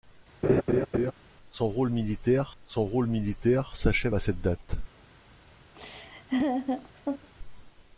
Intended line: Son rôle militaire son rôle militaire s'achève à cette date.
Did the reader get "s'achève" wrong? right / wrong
right